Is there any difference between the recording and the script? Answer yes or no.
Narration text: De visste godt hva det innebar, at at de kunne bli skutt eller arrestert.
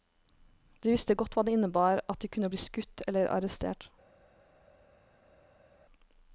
yes